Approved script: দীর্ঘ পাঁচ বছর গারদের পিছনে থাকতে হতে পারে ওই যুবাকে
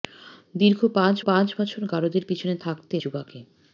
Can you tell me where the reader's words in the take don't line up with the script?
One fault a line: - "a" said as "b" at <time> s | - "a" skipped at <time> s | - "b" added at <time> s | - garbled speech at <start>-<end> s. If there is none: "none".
- "পাঁচ" added at 1.3 s
- "হতে পারে ওই" skipped at 3.0 s